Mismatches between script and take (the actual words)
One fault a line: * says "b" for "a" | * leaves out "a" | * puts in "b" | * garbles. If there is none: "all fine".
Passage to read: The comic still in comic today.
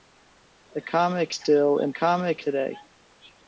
all fine